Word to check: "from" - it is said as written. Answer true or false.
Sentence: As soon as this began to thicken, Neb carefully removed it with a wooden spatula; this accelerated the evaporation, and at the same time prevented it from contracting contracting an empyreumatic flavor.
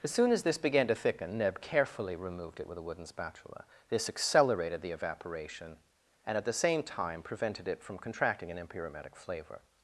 true